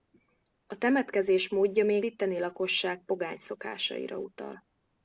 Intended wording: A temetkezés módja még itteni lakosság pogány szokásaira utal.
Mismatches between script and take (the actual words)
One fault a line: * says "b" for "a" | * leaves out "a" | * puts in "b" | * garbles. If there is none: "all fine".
all fine